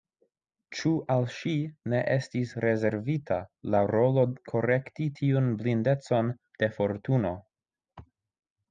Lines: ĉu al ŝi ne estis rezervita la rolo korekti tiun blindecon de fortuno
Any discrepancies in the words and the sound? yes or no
no